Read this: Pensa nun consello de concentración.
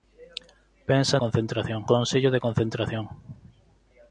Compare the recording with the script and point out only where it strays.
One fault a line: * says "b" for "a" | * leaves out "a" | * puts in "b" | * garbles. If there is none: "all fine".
* says "concentración" for "nun"